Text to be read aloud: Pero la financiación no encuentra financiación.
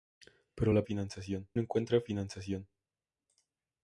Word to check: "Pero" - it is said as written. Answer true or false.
true